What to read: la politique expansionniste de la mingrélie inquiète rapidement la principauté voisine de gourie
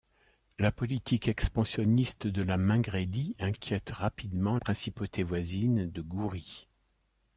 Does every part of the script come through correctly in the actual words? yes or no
no